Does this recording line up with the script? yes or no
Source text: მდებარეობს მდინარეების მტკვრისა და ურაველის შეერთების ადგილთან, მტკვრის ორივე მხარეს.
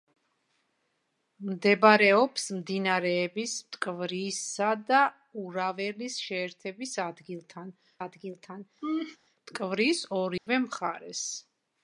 no